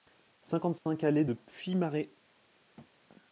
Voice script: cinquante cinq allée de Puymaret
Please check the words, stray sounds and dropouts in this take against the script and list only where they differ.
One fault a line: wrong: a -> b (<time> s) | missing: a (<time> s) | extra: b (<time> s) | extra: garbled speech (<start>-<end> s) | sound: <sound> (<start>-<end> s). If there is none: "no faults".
sound: dropout (0.8-0.9 s)
sound: thud (2.8-2.9 s)